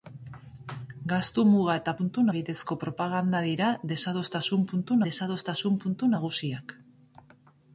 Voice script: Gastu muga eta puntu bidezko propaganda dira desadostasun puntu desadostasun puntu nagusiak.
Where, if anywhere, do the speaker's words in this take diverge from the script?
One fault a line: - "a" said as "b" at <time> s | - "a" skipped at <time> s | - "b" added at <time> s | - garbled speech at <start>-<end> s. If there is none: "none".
none